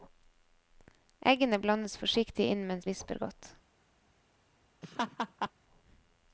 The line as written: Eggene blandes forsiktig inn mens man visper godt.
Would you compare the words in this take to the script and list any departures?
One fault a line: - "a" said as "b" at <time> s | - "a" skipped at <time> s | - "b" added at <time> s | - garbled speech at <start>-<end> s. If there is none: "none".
- "man" skipped at 2.9 s